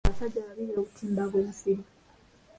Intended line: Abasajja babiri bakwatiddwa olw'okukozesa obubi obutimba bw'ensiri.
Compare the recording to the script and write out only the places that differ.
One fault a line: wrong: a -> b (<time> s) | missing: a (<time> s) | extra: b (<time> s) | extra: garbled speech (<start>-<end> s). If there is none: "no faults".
missing: bakwatiddwa olw'okukozesa obubi (0.7 s)